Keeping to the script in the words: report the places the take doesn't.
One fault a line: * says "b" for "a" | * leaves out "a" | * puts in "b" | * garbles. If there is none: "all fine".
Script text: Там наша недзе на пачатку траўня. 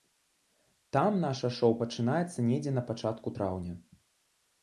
* puts in "шоў пачынаецца"